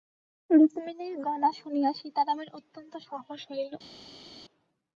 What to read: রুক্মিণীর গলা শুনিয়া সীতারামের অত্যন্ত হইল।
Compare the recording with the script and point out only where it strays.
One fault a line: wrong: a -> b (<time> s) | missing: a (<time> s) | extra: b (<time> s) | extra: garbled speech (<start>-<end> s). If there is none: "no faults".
extra: সাহস (3.1 s)